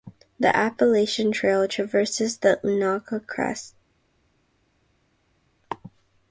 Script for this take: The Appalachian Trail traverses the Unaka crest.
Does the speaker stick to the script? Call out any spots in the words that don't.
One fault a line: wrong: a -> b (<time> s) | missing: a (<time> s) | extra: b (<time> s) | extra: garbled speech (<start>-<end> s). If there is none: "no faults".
no faults